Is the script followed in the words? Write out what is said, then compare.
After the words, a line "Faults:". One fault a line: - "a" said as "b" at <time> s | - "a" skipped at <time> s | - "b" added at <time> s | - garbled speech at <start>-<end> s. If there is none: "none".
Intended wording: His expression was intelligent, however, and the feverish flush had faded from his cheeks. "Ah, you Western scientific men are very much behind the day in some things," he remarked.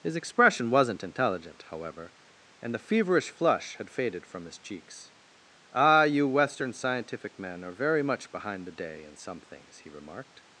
His expression wasn't intelligent, however, and the feverish flush had faded from his cheeks. "Ah, you Western scientific men are very much behind the day in some things," he remarked.
Faults:
- "was" said as "wasn't" at 0.7 s